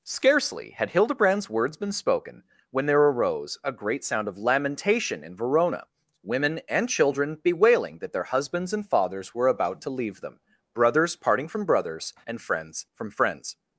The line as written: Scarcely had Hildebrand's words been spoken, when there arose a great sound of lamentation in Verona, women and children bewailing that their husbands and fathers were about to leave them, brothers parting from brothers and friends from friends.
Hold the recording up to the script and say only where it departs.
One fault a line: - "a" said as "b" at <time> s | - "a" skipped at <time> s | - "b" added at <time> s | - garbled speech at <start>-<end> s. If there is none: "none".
none